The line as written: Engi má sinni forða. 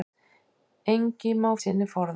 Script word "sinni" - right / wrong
right